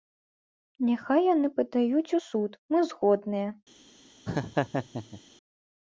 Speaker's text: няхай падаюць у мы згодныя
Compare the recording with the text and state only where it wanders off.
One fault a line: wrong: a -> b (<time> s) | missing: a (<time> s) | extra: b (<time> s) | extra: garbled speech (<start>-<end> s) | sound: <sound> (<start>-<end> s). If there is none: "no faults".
extra: яны (1.3 s)
extra: суд (2.3 s)
sound: laugh (4.3-5.2 s)